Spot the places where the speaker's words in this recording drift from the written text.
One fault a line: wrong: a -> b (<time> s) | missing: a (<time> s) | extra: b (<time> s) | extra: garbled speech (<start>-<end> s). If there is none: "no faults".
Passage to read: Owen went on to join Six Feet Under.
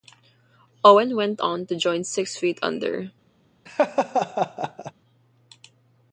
no faults